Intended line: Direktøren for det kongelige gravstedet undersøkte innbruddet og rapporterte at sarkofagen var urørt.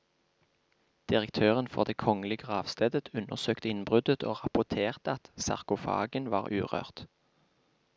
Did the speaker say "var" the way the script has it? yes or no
yes